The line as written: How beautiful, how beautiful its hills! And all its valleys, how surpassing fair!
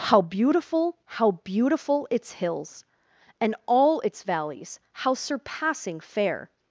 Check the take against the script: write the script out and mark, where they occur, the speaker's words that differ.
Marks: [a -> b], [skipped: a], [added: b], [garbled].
How beautiful, how beautiful its hills! And all its valleys, how surpassing fair!